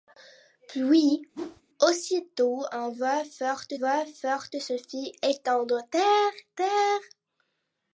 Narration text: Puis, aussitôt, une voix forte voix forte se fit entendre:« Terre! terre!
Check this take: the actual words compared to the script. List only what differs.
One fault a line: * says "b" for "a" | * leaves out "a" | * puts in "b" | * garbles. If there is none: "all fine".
all fine